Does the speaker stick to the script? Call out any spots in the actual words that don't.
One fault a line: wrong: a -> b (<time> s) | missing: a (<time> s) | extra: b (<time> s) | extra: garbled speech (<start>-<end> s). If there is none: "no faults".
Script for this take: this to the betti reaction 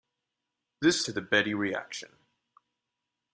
no faults